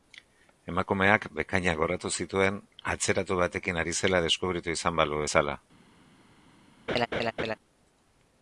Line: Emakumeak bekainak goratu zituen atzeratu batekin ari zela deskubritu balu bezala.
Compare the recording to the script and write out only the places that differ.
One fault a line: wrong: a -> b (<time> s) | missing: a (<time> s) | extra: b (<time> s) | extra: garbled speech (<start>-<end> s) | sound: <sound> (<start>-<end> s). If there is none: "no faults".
extra: izan (4.8 s)
sound: laugh (6.9-7.6 s)